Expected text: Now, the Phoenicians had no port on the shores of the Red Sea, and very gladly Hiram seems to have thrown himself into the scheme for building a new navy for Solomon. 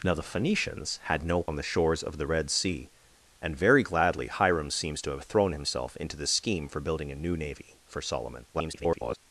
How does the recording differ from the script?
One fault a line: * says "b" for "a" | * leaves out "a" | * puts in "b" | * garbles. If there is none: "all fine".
* leaves out "port"
* garbles